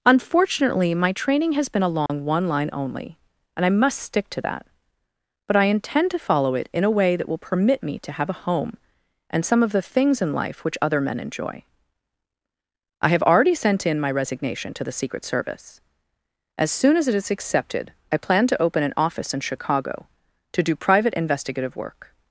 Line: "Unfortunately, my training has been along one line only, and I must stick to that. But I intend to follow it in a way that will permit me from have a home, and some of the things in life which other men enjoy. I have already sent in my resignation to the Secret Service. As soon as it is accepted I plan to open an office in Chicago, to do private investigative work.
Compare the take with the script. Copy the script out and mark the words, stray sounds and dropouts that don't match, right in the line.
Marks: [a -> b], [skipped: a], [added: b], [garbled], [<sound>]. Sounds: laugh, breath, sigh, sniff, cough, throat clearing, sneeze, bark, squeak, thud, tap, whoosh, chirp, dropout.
"Unfortunately, my training has been along [dropout] one line only, and I must stick to that. But I intend to follow it in a way that will permit me [from -> to] have a home, and some of the things in life which other men enjoy. I have already sent in my resignation to the Secret Service. As soon as it is accepted I plan to open an office in Chicago, to do private investigative work.